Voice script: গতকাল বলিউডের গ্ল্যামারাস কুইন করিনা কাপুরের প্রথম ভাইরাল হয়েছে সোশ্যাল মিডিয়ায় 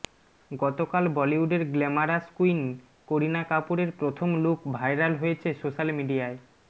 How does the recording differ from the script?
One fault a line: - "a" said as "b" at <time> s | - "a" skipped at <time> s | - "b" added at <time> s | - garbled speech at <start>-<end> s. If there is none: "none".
- "লুক" added at 4.4 s